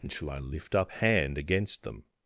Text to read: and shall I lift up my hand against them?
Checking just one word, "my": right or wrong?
wrong